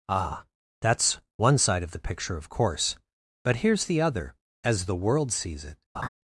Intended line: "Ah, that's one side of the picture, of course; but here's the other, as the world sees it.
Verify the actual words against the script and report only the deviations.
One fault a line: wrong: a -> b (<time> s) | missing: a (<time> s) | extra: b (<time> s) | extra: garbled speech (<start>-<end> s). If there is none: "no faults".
no faults